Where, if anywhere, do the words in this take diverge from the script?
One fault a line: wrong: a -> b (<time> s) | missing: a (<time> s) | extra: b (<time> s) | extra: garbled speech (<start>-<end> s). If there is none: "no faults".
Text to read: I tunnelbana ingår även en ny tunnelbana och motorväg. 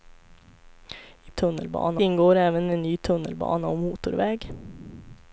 no faults